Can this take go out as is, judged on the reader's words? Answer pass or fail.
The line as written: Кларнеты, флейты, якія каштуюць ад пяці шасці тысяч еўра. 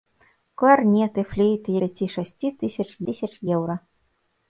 fail